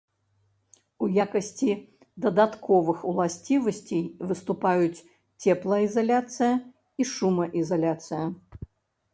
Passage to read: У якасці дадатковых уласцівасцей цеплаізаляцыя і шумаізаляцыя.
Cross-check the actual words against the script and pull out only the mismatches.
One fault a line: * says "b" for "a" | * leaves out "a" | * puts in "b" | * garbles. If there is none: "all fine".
* puts in "выступаюць"